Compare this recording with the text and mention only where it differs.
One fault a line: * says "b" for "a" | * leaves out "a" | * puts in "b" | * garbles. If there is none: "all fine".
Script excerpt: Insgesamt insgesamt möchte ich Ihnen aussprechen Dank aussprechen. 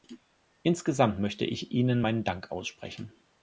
* leaves out "insgesamt"
* says "meinen" for "aussprechen"